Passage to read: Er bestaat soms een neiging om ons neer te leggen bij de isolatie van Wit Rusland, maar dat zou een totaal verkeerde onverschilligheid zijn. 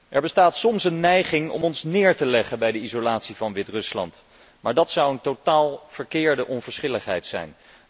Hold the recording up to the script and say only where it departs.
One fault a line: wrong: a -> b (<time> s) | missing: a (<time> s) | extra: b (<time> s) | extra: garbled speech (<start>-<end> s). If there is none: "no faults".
no faults